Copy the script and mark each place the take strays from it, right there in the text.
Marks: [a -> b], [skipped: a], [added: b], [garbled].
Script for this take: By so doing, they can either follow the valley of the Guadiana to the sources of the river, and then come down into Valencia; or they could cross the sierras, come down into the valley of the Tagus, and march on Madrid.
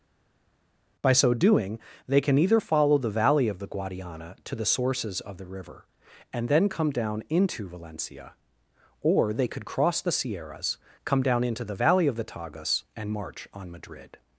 By so doing, they can either follow the valley of the Guadiana to the sources of the river, and then come down into Valencia; or they could cross the sierras, come down into the valley of the Tagus, and march on Madrid.